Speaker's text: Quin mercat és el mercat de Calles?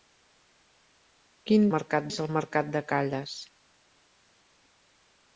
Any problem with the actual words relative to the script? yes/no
no